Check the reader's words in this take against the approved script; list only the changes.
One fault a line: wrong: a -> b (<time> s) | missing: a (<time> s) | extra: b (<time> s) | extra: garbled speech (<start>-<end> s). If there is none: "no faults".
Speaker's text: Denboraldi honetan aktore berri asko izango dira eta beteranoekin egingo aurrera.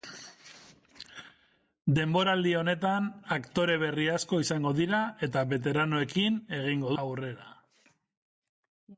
no faults